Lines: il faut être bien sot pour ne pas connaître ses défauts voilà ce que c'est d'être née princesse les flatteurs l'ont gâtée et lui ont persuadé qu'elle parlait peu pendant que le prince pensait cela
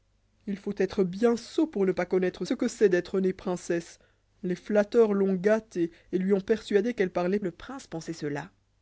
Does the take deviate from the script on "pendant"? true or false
true